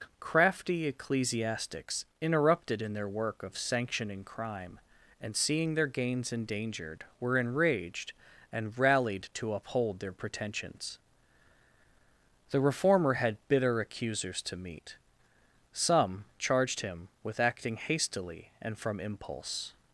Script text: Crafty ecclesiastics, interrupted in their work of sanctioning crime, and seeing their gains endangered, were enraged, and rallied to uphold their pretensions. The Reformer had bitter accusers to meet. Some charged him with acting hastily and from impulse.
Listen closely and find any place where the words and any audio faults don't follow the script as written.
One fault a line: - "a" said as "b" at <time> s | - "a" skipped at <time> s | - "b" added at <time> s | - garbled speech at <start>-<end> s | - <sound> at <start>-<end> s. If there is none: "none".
none